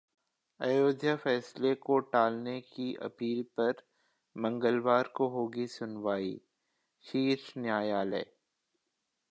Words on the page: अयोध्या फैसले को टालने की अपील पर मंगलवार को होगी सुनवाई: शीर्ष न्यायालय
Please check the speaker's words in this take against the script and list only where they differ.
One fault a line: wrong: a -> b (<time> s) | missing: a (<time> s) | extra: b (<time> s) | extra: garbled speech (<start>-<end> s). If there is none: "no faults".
no faults